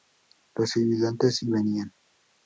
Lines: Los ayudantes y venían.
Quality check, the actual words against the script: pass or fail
pass